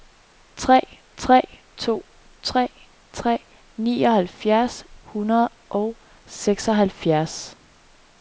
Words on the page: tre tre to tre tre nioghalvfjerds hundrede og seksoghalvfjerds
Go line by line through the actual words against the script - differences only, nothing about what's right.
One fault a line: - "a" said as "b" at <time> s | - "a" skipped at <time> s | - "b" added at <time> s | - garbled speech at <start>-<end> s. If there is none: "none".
none